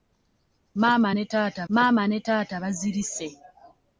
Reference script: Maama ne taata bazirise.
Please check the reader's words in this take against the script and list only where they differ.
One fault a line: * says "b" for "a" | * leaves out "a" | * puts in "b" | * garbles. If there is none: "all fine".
* puts in "maama ne taata"